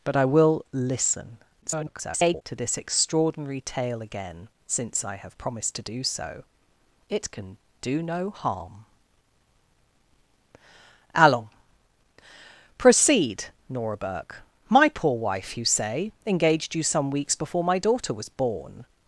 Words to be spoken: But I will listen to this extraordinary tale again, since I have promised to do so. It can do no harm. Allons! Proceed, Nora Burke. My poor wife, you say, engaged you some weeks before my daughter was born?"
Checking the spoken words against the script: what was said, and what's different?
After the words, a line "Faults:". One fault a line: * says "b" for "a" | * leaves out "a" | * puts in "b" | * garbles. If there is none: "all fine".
But I will listen [garbled] to this extraordinary tale again, since I have promised to do so. It can do no harm. Allons! Proceed, Nora Burke. My poor wife, you say, engaged you some weeks before my daughter was born?"
Faults:
* garbles